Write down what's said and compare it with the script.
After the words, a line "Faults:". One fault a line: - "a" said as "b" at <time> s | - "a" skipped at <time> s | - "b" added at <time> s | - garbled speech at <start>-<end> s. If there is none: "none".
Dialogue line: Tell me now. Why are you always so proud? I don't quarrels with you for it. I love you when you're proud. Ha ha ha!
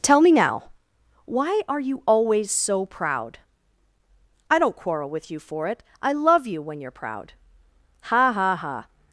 Tell me now. Why are you always so proud? I don't quarrel with you for it. I love you when you're proud. Ha ha ha!
Faults:
- "quarrels" said as "quarrel" at 4.8 s